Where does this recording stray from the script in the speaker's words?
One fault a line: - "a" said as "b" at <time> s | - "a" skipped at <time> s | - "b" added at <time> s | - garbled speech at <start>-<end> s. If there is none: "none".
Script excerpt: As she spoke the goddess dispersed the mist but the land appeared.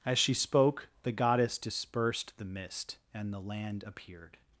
- "but" said as "and" at 3.1 s